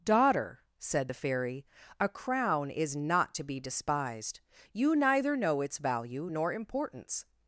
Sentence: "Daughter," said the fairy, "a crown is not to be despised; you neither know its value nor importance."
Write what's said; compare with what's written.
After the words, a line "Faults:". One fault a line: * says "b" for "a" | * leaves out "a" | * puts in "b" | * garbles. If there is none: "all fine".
"Daughter," said the fairy, "a crown is not to be despised; you neither know its value nor importance."
Faults:
all fine